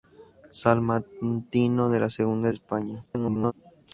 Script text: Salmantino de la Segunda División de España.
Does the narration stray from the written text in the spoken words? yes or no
yes